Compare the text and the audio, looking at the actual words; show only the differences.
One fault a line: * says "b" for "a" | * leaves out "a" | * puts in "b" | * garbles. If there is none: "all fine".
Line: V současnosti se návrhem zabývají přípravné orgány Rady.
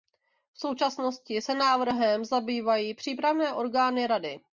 all fine